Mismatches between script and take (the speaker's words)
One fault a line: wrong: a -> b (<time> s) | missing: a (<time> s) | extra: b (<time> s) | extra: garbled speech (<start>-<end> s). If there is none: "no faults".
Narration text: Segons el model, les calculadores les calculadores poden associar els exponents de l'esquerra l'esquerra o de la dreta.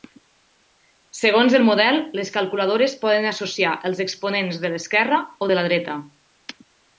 missing: les calculadores (3.0 s)
missing: l'esquerra (5.2 s)